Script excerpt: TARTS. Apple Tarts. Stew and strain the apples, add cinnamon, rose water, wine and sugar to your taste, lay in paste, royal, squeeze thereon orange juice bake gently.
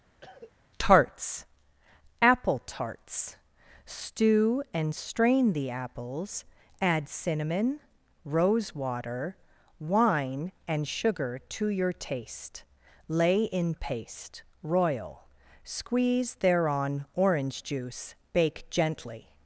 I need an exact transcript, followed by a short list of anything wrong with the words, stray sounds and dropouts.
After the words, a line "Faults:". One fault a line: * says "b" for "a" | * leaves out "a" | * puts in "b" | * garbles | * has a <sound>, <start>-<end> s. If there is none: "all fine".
TARTS. Apple Tarts. Stew and strain the apples, add cinnamon, rose water, wine and sugar to your taste, lay in paste, royal, squeeze thereon orange juice bake gently.
Faults:
* has a cough, 0.2-0.5 s